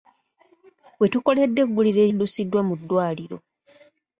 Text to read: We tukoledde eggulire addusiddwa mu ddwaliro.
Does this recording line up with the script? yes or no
yes